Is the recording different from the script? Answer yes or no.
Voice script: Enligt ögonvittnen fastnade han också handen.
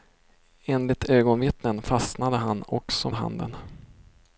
no